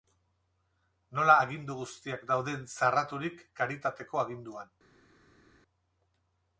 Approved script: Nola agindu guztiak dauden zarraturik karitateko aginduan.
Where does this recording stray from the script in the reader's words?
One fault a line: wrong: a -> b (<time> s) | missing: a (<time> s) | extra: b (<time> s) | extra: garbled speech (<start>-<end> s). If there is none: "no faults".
no faults